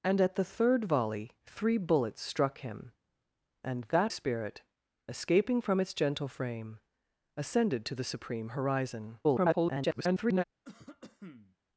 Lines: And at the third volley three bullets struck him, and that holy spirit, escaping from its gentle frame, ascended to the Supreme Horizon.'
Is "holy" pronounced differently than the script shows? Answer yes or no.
yes